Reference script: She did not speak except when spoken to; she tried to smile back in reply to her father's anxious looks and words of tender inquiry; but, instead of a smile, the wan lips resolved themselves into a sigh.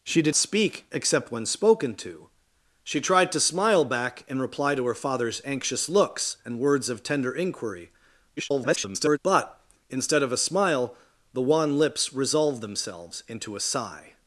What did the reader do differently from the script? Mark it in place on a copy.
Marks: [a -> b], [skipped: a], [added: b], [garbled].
She did [skipped: not] speak except when spoken to; she tried to smile back in reply to her father's anxious looks and words of tender inquiry; [garbled] but, instead of a smile, the wan lips resolved themselves into a sigh.